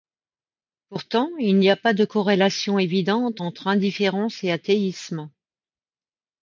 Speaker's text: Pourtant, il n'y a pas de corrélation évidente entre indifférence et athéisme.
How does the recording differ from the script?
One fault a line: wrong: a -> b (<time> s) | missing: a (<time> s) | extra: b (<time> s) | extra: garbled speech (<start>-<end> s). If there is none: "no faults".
no faults